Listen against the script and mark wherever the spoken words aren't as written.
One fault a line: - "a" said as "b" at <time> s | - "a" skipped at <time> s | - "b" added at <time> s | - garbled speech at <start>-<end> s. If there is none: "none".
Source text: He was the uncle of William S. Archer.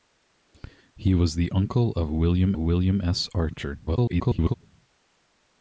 - "William" added at 2.5 s
- garbled speech at 3.9-4.5 s